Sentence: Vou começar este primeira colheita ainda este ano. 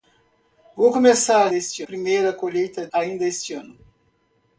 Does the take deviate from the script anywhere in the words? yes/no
no